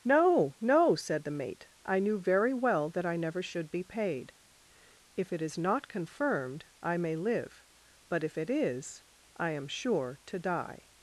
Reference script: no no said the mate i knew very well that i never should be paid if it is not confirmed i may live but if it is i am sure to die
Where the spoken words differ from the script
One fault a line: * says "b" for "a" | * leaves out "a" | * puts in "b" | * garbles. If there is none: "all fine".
all fine